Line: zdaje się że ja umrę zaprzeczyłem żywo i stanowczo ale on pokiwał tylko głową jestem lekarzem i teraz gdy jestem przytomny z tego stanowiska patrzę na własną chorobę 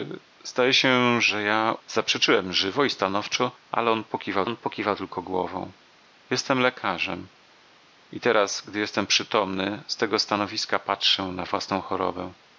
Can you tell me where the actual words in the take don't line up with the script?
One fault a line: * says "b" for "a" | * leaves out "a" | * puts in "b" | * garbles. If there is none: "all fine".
* leaves out "umrę"
* puts in "on pokiwał"